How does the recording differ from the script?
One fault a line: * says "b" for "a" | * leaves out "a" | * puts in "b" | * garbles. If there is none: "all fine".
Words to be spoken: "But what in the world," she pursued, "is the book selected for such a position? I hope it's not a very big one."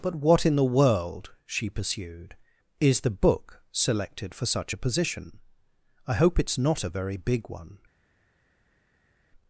all fine